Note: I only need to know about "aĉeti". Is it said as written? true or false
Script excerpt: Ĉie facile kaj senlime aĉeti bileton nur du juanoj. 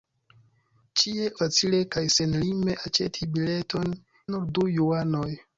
true